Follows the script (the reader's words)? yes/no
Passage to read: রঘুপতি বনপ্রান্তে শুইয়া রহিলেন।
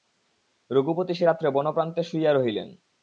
no